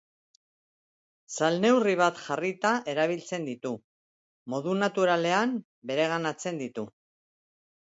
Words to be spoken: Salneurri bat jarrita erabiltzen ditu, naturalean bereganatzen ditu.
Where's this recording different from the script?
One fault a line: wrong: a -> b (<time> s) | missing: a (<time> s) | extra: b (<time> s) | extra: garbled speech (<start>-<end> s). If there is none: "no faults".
extra: modu (4.6 s)